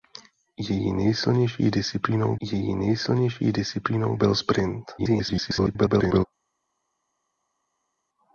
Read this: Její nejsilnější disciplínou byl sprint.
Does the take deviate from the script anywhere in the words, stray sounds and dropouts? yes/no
yes